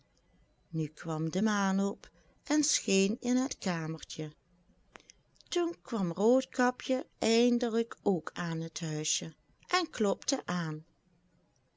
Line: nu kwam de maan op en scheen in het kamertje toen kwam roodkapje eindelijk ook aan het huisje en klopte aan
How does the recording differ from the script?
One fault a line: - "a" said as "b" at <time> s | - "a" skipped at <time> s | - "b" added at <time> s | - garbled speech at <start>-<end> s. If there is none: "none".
none